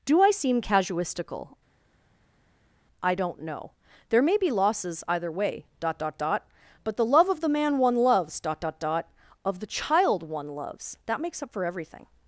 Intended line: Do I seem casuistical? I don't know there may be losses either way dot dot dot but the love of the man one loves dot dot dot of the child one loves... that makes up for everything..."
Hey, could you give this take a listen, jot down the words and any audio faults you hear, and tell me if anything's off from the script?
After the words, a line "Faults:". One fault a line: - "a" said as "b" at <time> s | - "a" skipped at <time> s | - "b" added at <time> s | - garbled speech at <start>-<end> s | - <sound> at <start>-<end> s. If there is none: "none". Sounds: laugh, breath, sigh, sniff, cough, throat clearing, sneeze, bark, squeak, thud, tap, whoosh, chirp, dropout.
Do I seem casuistical? I don't know there may be losses either way dot dot dot but the love of the man one loves dot dot dot of the child one loves... that makes up for everything..."
Faults:
none